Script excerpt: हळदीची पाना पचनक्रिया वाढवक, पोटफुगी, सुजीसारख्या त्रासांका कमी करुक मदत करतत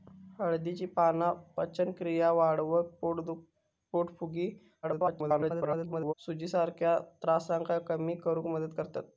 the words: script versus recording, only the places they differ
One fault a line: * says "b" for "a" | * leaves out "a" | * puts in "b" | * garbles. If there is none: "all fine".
* garbles